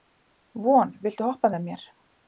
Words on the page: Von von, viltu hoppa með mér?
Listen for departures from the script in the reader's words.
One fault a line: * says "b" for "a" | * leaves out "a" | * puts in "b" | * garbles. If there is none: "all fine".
* leaves out "von"